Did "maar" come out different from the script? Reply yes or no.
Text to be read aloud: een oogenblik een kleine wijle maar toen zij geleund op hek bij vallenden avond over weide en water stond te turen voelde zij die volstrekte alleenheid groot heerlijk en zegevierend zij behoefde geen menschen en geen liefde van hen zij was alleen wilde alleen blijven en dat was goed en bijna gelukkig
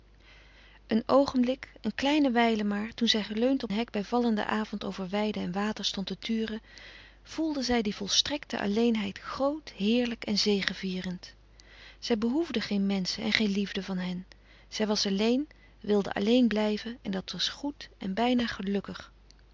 no